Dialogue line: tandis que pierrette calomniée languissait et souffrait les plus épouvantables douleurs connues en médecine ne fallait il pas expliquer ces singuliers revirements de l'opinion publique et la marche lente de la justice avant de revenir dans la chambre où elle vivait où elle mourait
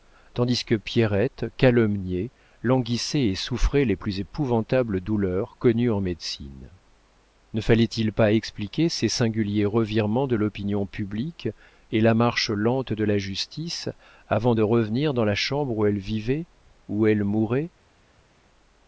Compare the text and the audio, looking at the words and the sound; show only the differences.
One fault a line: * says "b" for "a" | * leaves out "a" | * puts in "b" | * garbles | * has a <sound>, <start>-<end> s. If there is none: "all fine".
all fine